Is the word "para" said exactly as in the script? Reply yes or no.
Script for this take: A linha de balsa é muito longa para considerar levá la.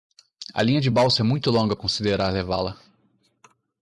no